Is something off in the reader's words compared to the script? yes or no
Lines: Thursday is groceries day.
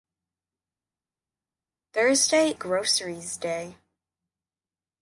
yes